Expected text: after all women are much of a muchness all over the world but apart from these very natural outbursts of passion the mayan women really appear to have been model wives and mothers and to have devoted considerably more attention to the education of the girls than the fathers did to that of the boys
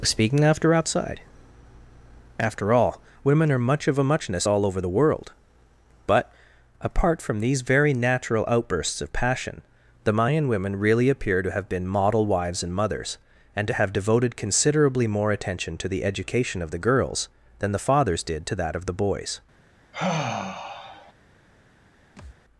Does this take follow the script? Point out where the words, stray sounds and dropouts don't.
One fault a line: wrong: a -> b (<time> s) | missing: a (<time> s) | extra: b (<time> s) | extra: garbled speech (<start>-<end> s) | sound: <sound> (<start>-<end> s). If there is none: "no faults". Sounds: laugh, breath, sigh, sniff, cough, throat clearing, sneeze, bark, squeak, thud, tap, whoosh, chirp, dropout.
extra: speaking after outside (0.0 s)
sound: sigh (19.9-21.1 s)
sound: thud (22.2-22.4 s)